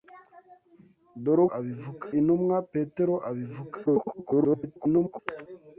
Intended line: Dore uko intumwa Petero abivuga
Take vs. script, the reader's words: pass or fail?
fail